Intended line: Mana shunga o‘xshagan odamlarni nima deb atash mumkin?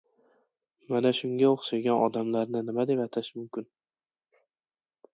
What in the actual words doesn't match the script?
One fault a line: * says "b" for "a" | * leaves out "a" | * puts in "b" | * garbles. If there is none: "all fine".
all fine